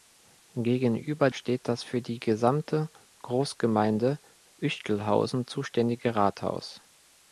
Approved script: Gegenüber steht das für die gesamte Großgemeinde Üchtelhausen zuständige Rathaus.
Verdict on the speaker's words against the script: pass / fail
pass